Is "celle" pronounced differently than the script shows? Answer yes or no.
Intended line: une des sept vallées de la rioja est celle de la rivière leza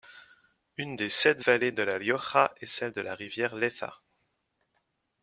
no